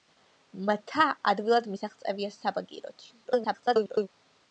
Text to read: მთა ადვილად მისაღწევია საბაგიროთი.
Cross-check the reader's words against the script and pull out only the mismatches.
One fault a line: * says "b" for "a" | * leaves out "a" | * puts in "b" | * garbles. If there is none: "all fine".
* garbles